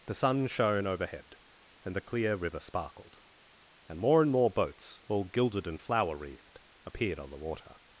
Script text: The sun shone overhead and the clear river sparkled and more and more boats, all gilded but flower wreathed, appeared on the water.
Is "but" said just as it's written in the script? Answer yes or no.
no